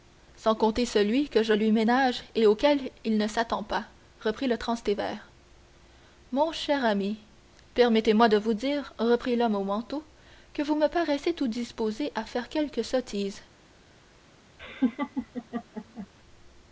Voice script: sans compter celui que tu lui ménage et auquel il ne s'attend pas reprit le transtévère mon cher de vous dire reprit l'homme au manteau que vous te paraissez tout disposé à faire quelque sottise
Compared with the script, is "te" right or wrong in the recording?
wrong